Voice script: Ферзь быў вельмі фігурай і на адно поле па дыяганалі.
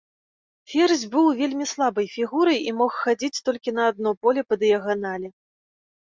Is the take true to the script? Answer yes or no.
no